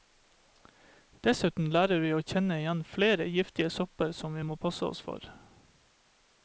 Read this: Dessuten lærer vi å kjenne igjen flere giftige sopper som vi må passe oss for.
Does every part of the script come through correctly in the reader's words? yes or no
yes